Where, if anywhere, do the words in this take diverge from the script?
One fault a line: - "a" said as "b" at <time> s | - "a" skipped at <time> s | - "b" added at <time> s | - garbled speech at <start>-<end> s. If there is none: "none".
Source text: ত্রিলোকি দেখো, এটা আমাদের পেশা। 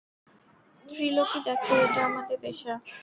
none